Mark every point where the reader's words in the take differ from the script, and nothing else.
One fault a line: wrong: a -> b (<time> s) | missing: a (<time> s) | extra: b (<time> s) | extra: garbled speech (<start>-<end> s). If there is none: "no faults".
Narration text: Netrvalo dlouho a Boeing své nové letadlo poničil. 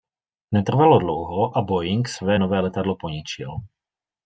no faults